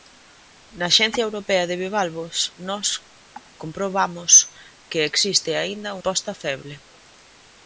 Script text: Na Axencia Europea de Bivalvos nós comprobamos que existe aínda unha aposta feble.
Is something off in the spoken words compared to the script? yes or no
yes